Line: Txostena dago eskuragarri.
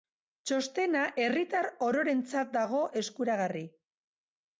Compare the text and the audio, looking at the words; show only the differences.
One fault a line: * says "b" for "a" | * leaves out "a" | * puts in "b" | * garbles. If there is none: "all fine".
* puts in "herritar ororentzat"